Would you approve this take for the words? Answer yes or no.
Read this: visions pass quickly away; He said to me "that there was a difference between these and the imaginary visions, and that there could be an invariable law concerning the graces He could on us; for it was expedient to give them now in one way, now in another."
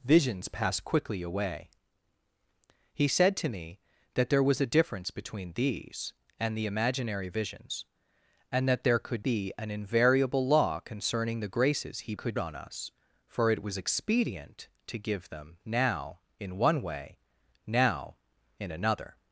yes